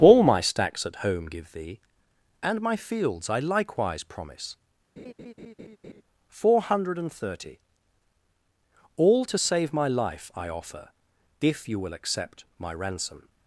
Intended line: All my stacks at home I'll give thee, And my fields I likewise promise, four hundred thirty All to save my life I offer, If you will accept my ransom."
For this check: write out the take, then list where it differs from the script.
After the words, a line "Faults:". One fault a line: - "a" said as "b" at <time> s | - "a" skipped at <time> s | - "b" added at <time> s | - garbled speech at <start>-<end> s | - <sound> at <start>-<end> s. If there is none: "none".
All my stacks at home give thee, And my fields I likewise promise, four hundred thirty All to save my life I offer, If you will accept my ransom."
Faults:
- "I'll" skipped at 1.3 s
- laugh at 5.0-6.0 s